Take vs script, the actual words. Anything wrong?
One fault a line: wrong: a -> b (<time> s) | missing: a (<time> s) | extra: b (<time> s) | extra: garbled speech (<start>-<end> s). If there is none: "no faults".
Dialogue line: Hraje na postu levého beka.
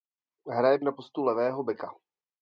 no faults